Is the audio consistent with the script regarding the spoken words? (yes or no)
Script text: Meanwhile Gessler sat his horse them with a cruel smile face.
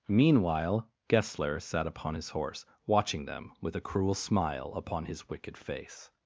no